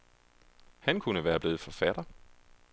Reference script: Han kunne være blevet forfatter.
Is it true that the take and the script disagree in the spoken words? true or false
false